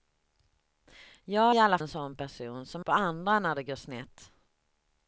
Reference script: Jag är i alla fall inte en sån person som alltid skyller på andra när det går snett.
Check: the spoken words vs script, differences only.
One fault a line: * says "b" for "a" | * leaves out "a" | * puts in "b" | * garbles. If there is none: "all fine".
* leaves out "är"
* leaves out "fall inte"
* leaves out "alltid skyller"